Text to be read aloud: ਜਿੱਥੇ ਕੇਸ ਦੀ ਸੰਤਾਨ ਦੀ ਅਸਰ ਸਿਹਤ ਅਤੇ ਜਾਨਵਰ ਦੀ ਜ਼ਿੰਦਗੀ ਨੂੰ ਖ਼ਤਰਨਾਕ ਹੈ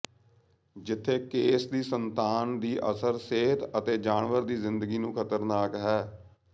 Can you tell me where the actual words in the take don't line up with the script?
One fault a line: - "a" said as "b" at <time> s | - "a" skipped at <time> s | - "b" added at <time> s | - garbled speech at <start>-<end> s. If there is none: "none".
none